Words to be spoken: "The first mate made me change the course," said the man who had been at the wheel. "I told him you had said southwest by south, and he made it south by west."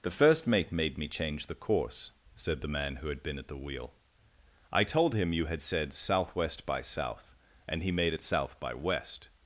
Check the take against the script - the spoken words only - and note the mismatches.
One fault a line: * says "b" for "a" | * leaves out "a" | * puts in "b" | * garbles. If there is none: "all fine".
all fine